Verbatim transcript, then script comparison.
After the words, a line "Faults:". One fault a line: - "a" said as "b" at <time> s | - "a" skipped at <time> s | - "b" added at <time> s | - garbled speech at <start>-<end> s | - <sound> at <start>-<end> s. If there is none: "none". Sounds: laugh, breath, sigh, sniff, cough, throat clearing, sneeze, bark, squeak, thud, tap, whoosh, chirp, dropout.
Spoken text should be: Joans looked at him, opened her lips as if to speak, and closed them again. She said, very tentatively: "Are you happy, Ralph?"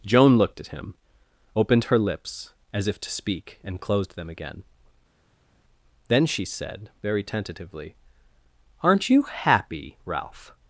Joan looked at him, opened her lips as if to speak, and closed them again. Then she said, very tentatively: "Aren't you happy, Ralph?"
Faults:
- "Joans" said as "Joan" at 0.1 s
- "Then" added at 6.1 s
- "Are" said as "Aren't" at 8.8 s